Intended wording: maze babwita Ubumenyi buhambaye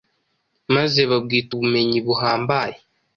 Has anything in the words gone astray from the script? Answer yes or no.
no